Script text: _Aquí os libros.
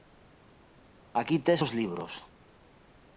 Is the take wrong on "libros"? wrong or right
right